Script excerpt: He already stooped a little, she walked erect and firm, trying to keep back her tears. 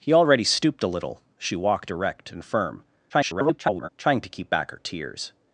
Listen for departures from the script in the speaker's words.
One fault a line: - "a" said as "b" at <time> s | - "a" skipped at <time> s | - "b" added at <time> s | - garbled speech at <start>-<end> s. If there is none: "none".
- garbled speech at 3.1-3.9 s